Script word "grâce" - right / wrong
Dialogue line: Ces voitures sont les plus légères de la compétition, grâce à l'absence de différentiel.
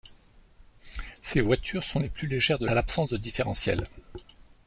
wrong